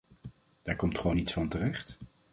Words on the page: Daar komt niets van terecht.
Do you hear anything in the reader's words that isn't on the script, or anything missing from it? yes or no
yes